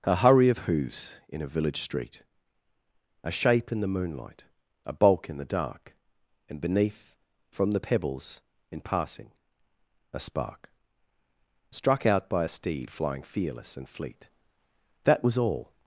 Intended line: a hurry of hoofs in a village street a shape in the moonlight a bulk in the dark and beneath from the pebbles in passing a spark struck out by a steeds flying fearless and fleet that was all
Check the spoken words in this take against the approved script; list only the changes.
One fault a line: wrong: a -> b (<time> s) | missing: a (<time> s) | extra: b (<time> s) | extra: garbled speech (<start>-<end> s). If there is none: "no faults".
wrong: steeds -> steed (12.5 s)